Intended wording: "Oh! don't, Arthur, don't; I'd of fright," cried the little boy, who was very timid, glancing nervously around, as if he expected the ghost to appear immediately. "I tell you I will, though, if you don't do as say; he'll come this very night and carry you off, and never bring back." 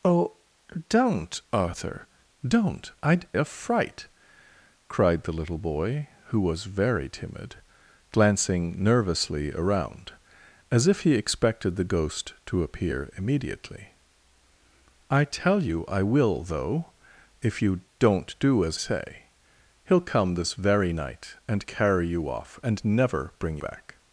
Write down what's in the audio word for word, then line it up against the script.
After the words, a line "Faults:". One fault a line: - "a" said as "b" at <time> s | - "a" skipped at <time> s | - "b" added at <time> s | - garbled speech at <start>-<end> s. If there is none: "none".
"Oh! don't, Arthur, don't; I'd of fright," cried the little boy, who was very timid, glancing nervously around, as if he expected the ghost to appear immediately. "I tell you I will, though, if you don't do as say; he'll come this very night and carry you off, and never bring back."
Faults:
none